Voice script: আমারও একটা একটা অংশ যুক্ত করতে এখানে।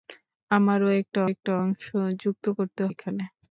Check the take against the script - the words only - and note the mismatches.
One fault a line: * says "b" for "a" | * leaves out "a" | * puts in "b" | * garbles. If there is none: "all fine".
all fine